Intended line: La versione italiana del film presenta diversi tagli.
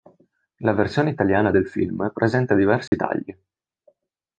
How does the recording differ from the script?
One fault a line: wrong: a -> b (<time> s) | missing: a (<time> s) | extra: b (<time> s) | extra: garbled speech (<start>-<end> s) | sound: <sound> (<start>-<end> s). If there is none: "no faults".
sound: dropout (2.9-2.9 s)